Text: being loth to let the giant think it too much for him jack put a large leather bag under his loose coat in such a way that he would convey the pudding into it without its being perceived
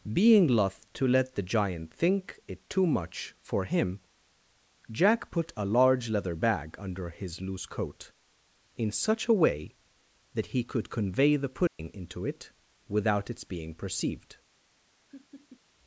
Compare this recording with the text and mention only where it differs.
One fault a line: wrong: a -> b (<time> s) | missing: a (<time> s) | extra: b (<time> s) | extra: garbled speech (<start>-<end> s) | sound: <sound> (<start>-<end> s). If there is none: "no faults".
wrong: would -> could (10.6 s)
sound: dropout (11.7-11.8 s)
sound: laugh (15.1-15.6 s)